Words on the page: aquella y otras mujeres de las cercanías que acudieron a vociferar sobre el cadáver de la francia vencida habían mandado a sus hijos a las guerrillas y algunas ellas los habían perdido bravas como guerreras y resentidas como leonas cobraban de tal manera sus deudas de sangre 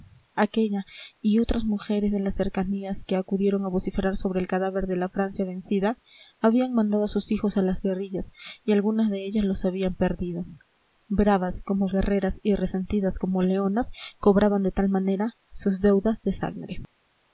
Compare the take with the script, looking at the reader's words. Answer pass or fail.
fail